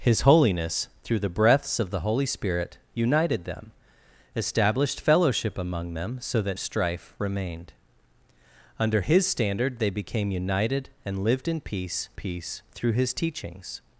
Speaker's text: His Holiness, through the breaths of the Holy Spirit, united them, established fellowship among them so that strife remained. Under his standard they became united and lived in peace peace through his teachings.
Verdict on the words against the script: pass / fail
pass